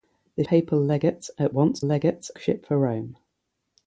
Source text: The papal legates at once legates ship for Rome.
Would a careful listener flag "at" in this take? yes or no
no